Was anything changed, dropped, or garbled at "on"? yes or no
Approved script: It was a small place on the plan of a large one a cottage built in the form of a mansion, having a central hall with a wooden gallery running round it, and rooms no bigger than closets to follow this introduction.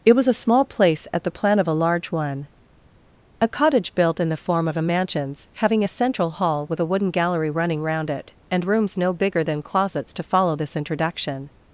yes